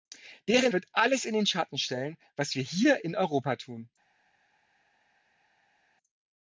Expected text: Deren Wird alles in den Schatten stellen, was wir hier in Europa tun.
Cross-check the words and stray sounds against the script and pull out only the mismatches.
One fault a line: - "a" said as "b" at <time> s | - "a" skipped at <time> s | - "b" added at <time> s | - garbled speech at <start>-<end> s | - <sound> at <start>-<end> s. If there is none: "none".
none